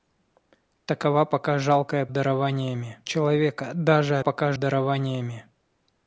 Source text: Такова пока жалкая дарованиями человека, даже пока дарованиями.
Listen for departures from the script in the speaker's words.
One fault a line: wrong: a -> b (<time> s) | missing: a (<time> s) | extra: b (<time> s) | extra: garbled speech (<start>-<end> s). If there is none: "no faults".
no faults